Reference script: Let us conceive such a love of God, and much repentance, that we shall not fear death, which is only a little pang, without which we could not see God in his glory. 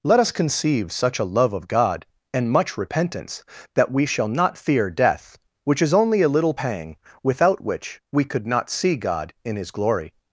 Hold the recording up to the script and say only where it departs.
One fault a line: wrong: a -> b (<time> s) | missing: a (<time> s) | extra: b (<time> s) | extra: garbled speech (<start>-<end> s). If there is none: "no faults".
no faults